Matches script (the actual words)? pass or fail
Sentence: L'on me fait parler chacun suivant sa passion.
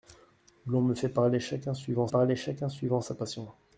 fail